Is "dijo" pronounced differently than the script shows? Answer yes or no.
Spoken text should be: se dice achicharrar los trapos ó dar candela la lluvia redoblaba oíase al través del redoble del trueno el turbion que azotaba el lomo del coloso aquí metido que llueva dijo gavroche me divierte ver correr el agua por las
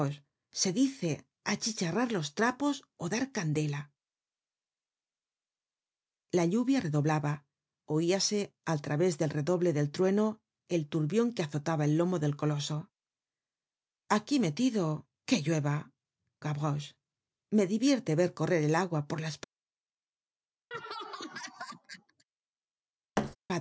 yes